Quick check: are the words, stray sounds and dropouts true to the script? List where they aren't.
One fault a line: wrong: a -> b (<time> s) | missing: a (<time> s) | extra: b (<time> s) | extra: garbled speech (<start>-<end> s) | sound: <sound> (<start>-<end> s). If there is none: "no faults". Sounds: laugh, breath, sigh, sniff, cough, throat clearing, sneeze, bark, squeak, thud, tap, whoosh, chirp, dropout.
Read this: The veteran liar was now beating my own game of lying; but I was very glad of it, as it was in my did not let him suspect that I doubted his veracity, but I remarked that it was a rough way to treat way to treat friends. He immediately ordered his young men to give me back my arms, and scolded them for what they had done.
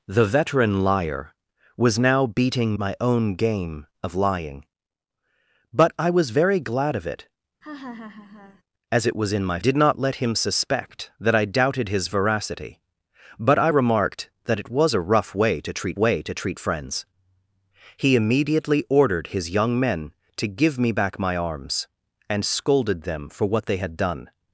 sound: laugh (7.6-8.6 s)